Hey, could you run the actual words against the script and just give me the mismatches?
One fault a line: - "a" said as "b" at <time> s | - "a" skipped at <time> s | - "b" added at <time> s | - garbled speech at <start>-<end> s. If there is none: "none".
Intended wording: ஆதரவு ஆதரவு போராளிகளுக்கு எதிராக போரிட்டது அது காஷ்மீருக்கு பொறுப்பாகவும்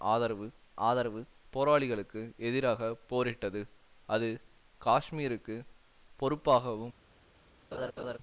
none